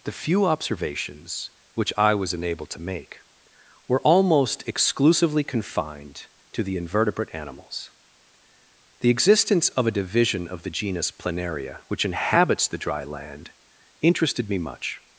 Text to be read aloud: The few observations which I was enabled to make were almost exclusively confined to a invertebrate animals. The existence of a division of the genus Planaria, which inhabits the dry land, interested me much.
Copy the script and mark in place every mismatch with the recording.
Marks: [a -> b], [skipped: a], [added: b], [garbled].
The few observations which I was enabled to make were almost exclusively confined to [a -> the] invertebrate animals. The existence of a division of the genus Planaria, which inhabits the dry land, interested me much.